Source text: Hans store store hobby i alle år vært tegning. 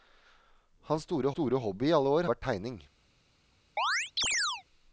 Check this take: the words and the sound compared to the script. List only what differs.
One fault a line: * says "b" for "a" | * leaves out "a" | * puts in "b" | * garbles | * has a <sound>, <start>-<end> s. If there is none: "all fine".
* has a chirp, 3.8-4.6 s